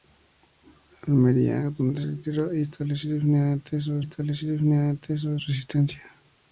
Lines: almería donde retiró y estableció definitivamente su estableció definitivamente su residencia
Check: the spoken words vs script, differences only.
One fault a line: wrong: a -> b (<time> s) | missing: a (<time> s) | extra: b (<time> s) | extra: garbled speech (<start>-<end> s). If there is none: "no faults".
no faults